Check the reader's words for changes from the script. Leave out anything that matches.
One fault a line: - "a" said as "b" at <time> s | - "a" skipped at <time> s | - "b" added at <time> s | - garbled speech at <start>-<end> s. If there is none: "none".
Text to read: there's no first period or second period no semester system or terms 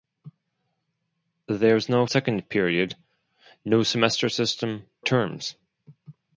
- "first period or" skipped at 2.0 s
- "or" skipped at 4.8 s